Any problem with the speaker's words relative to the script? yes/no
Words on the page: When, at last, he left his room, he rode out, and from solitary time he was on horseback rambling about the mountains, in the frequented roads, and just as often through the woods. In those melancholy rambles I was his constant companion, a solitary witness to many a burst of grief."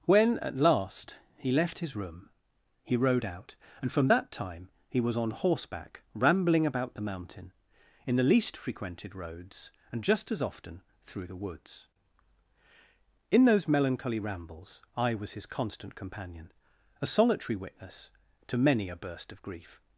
yes